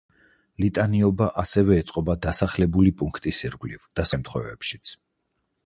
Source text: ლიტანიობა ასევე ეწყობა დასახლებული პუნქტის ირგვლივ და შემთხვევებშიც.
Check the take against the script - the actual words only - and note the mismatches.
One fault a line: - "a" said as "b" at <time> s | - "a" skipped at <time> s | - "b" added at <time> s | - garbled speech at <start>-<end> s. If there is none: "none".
none